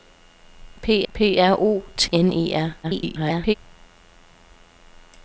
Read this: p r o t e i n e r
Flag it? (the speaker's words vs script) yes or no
yes